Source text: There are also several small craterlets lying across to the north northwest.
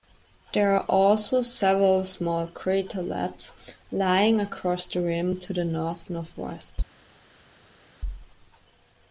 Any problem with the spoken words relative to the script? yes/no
yes